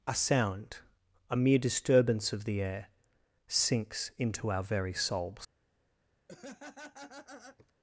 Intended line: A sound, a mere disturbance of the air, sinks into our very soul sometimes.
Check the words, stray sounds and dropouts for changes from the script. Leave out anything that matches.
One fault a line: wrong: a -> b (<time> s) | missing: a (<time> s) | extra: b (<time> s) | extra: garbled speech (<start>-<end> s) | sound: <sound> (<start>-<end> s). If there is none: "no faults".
wrong: soul sometimes -> souls (4.9 s)
sound: laugh (6.3-7.7 s)